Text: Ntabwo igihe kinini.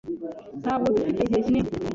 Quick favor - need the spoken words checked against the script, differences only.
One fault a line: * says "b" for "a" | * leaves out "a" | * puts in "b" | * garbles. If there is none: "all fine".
* puts in "dufite"